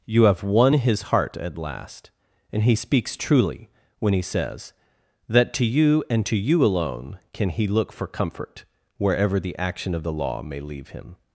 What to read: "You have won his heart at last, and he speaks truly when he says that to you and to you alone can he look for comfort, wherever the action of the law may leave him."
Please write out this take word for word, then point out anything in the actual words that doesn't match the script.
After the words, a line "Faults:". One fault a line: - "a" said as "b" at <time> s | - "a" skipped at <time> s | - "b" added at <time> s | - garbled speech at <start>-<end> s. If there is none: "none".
"You have won his heart at last, and he speaks truly when he says that to you and to you alone can he look for comfort, wherever the action of the law may leave him."
Faults:
none